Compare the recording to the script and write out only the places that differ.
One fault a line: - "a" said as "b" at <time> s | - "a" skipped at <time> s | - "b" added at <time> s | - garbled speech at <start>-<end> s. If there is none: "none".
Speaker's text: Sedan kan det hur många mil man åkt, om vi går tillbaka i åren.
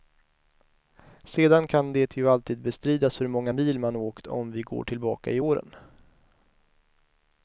- "ju alltid bestridas" added at 2.2 s